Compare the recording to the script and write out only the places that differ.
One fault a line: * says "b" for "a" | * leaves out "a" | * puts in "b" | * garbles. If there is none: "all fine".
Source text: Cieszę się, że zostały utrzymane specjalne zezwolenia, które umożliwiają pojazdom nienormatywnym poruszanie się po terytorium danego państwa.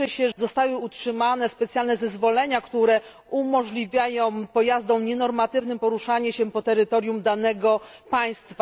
* leaves out "że"